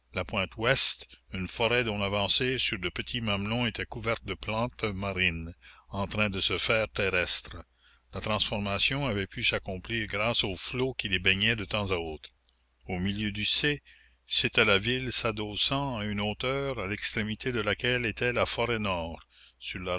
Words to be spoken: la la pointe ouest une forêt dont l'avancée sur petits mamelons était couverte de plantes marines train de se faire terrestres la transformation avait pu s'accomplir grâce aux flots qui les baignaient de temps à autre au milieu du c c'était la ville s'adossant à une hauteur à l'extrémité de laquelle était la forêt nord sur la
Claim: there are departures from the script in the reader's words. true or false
true